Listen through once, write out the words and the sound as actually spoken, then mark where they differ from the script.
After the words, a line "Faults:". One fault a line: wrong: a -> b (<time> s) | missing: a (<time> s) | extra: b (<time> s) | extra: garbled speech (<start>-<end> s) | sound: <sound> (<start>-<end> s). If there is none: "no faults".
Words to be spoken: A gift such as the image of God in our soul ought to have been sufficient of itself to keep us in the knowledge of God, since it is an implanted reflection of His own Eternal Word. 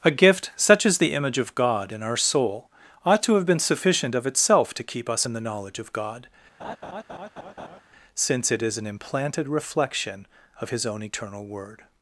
A gift such as the image of God in our soul ought to have been sufficient of itself to keep us in the knowledge of God, since it is an implanted reflection of His own Eternal Word.
Faults:
sound: laugh (6.6-7.8 s)